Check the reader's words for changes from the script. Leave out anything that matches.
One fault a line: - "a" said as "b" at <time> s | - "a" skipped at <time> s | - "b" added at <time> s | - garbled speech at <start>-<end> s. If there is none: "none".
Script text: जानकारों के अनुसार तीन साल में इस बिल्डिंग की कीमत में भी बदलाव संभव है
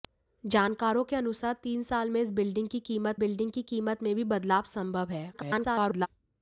- "बिल्डिंग की कीमत" added at 3.1 s
- garbled speech at 5.3-6.1 s